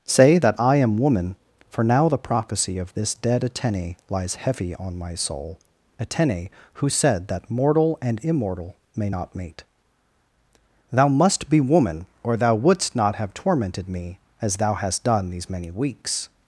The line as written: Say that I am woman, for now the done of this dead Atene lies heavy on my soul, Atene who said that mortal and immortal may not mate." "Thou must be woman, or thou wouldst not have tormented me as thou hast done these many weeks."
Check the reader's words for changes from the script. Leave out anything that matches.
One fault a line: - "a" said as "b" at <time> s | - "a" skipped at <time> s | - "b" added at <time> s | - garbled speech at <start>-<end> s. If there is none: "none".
- "done" said as "prophecy" at 2.2 s